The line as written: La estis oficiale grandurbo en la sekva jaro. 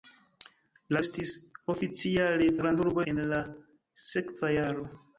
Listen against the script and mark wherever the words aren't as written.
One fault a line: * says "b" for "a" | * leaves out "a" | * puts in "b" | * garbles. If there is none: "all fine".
all fine